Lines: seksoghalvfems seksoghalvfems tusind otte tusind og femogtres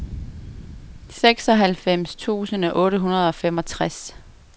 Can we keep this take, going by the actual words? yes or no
no